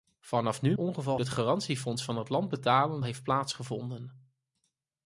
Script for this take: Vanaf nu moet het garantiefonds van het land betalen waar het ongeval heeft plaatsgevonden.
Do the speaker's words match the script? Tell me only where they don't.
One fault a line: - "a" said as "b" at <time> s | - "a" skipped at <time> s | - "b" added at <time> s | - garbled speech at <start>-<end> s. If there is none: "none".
- "moet" said as "ongeval" at 0.7 s
- "waar het ongeval" skipped at 3.0 s